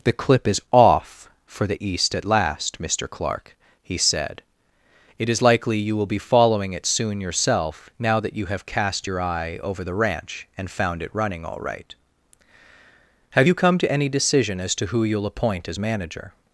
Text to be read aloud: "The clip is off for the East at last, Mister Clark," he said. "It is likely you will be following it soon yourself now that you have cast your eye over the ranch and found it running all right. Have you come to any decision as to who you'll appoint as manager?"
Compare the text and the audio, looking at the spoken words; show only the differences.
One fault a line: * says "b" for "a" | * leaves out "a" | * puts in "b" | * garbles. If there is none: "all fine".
all fine